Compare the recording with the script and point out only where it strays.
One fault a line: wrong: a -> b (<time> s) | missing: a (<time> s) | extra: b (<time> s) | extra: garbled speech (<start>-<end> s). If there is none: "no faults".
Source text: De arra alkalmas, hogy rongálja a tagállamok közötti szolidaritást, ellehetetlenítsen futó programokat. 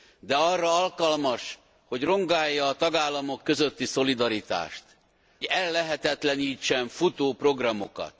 no faults